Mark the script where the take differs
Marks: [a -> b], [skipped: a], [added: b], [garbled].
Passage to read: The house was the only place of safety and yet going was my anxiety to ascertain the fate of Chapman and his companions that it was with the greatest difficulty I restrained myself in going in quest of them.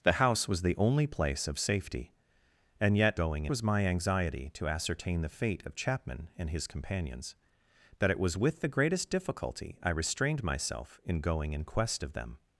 The house was the only place of safety and yet going was my anxiety to ascertain the fate of Chapman and his companions that it was with the greatest difficulty I restrained myself in going in quest of them.